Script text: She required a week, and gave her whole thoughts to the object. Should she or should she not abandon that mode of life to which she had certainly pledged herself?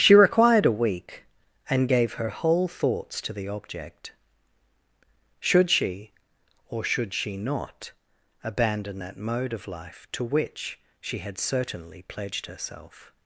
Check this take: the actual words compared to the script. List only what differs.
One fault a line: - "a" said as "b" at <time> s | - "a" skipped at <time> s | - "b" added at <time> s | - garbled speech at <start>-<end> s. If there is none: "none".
none